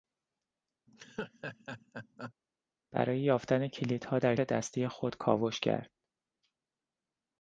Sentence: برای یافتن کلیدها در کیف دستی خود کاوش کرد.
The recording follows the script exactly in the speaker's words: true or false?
false